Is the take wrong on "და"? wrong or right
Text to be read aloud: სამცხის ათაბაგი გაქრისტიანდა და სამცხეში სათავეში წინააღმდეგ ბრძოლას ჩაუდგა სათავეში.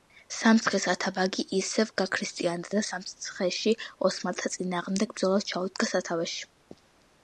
right